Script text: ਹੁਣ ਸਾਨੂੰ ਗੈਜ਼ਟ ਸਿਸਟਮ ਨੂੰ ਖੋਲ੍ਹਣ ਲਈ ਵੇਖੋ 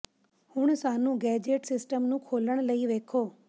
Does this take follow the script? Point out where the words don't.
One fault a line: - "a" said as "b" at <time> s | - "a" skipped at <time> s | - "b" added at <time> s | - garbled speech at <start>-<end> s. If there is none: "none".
none